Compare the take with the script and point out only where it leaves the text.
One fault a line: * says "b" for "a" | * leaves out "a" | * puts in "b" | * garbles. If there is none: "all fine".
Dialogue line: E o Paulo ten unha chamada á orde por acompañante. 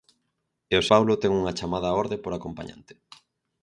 all fine